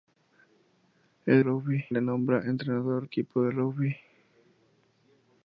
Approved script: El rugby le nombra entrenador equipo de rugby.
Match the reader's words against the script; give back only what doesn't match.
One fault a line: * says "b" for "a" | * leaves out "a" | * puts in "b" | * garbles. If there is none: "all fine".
all fine